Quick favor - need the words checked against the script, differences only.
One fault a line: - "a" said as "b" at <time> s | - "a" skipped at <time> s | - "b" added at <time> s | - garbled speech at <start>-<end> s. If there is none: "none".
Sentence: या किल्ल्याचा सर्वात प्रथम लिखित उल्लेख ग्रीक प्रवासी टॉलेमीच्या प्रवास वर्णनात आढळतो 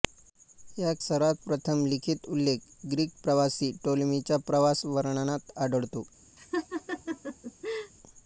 - "किल्ल्याचा" skipped at 0.9 s